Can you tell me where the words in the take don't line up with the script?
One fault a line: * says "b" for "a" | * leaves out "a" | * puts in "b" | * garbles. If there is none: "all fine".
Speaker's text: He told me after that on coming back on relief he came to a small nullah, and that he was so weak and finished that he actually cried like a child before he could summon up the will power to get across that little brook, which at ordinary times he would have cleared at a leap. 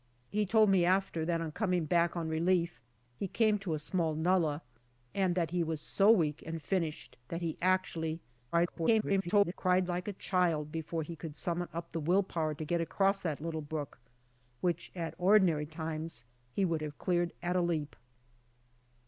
* garbles